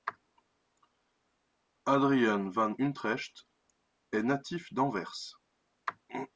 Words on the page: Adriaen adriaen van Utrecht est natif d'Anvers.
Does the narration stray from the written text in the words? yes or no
yes